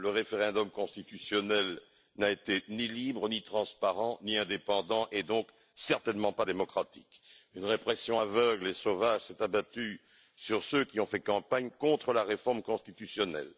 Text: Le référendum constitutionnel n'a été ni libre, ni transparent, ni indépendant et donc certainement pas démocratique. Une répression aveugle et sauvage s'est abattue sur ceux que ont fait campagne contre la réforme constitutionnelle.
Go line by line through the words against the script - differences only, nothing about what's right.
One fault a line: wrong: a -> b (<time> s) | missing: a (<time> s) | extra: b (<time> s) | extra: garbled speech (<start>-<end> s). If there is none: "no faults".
wrong: que -> qui (10.8 s)